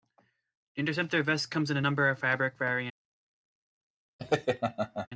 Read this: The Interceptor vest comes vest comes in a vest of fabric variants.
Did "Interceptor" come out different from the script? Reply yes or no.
no